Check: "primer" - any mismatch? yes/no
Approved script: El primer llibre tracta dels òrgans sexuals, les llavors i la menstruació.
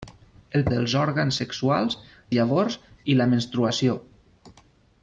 yes